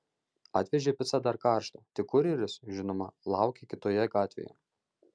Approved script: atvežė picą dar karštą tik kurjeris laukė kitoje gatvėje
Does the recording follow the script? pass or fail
fail